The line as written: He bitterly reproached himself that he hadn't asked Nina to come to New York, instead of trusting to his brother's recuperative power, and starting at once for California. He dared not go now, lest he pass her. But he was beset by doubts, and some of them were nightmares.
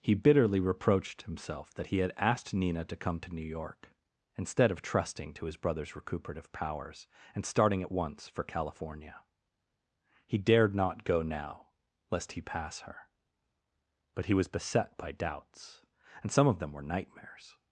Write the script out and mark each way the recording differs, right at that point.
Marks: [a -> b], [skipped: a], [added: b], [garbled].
He bitterly reproached himself that he [hadn't -> had] asked Nina to come to New York, instead of trusting to his brother's recuperative [power, -> powers] and starting at once for California. He dared not go now, lest he pass her. But he was beset by doubts, and some of them were nightmares.